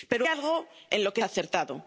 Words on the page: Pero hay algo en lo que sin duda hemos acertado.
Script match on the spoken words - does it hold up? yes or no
no